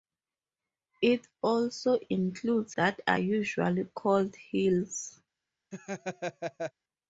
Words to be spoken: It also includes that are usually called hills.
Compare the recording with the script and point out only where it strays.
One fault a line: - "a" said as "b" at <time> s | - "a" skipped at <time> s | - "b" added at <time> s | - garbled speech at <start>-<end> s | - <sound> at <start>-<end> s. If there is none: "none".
- laugh at 5.7-6.7 s